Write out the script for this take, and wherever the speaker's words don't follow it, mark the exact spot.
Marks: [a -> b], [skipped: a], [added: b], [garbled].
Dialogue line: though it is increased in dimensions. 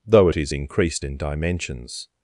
though it is increased in dimensions.